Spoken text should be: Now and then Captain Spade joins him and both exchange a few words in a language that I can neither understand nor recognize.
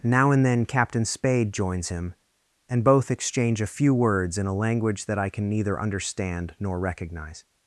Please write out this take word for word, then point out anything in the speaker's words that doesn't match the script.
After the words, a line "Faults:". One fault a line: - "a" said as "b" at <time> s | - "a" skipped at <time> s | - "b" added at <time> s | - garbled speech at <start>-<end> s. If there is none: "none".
Now and then Captain Spade joins him and both exchange a few words in a language that I can neither understand nor recognize.
Faults:
none